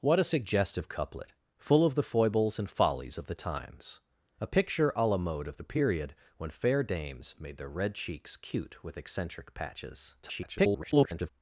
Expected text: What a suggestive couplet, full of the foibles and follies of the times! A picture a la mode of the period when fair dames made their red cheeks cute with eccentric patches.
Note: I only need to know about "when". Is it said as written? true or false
true